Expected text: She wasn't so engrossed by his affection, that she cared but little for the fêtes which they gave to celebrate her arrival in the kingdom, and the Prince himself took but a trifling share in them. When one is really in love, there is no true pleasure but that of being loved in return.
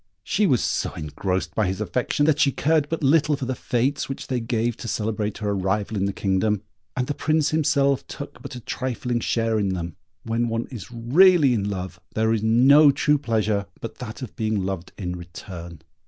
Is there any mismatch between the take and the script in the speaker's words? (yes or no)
yes